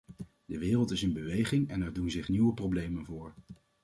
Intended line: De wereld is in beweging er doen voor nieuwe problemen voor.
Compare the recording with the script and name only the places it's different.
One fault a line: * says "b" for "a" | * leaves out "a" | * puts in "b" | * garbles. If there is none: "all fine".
* puts in "en"
* says "zich" for "voor"